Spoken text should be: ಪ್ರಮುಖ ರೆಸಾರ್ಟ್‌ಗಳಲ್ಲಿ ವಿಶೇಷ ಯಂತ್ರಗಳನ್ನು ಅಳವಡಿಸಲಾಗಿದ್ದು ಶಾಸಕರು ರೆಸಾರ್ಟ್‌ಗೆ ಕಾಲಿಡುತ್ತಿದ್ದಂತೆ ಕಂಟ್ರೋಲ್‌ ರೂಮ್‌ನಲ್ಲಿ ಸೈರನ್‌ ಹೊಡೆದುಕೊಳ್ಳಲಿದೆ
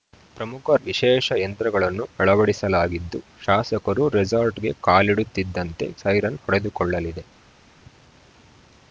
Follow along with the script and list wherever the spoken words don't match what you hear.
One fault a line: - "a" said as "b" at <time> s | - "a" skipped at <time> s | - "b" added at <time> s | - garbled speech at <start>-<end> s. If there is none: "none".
- "ರೆಸಾರ್ಟ್‌ಗಳಲ್ಲಿ" skipped at 0.8 s
- "ಕಂಟ್ರೋಲ್ ರೂಮ್‌ನಲ್ಲಿ" skipped at 5.9 s